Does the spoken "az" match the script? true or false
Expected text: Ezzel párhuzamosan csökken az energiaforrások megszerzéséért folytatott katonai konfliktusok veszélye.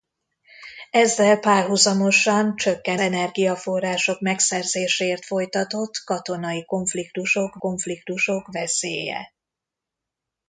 false